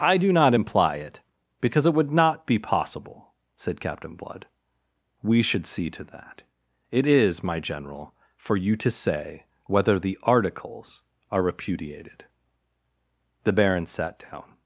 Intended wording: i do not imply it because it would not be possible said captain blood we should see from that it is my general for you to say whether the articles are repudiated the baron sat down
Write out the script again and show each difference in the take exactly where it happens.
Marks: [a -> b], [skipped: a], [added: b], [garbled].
i do not imply it because it would not be possible said captain blood we should see [from -> to] that it is my general for you to say whether the articles are repudiated the baron sat down